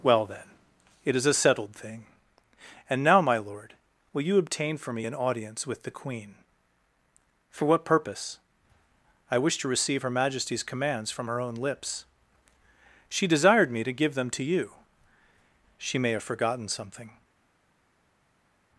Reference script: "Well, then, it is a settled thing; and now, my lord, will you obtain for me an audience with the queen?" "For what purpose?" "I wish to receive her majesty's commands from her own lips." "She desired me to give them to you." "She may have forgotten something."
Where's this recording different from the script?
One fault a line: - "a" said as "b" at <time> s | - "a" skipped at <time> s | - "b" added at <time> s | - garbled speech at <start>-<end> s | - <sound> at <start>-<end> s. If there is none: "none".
none